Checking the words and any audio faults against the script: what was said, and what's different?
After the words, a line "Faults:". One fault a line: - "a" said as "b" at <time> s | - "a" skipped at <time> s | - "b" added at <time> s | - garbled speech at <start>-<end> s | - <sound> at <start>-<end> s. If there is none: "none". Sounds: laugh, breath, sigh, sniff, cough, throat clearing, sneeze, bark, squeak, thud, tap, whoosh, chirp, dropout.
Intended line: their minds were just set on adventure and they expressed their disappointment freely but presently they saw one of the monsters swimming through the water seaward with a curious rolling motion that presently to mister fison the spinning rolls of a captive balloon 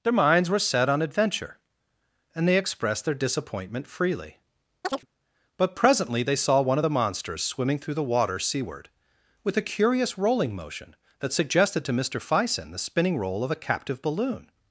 their minds were set on adventure and they expressed their disappointment freely but presently they saw one of the monsters swimming through the water seaward with a curious rolling motion that suggested to mister fison the spinning roll of a captive balloon
Faults:
- "just" skipped at 0.6 s
- chirp at 4.8-5.1 s
- "presently" said as "suggested" at 11.3 s
- "rolls" said as "roll" at 13.2 s